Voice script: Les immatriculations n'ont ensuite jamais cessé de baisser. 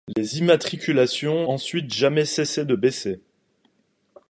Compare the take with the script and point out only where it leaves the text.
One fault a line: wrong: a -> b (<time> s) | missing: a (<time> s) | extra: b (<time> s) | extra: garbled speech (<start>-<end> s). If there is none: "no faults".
missing: n'ont (1.5 s)